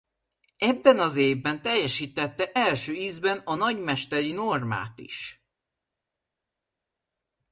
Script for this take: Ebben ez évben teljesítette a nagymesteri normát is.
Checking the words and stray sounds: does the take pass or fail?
fail